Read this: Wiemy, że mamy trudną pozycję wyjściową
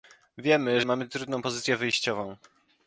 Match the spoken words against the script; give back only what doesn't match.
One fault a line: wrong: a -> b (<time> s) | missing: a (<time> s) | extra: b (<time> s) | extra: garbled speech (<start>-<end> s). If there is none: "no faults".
missing: że (0.8 s)